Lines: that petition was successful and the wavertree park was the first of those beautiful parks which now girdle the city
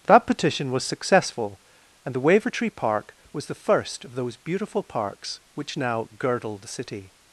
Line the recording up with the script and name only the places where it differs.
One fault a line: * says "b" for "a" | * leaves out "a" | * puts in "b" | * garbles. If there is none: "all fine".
all fine